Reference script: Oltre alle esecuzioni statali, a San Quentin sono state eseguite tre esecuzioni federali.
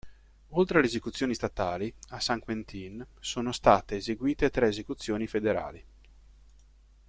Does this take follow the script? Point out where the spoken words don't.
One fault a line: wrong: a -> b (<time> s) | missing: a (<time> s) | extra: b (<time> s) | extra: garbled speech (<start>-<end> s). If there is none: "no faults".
no faults